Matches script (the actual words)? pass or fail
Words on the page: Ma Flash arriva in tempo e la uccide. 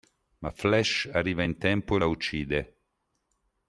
pass